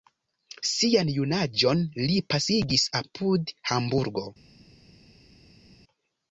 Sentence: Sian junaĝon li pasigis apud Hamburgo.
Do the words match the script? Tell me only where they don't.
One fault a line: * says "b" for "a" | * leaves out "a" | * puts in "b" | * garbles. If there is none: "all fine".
all fine